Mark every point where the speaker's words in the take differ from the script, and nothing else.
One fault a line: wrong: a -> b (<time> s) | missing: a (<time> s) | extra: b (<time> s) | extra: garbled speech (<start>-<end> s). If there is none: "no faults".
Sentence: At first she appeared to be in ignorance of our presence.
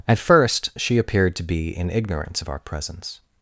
no faults